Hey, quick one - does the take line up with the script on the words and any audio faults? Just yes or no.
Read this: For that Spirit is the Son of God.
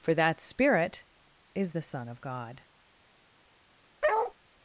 no